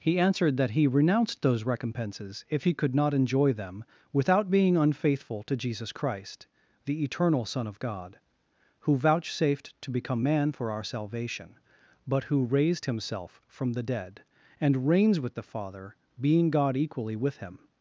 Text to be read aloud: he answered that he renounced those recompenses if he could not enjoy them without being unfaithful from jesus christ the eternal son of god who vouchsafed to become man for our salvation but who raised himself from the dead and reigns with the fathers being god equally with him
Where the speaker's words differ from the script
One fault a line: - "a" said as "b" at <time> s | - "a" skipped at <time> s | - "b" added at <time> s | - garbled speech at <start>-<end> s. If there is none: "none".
- "from" said as "to" at 5.4 s
- "fathers" said as "father" at 15.4 s